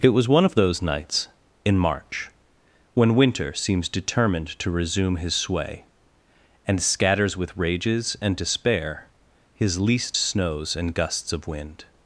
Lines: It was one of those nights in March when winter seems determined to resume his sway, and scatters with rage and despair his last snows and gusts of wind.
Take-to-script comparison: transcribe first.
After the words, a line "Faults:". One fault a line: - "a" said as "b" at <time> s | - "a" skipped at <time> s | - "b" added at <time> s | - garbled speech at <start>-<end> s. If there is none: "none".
It was one of those nights in March when winter seems determined to resume his sway, and scatters with rages and despair his least snows and gusts of wind.
Faults:
- "rage" said as "rages" at 7.6 s
- "last" said as "least" at 9.8 s